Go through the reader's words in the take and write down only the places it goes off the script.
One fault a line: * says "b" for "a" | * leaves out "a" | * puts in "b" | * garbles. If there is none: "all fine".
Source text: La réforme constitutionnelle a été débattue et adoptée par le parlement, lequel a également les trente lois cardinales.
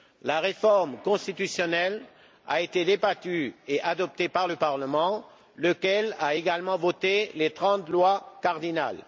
* puts in "voté"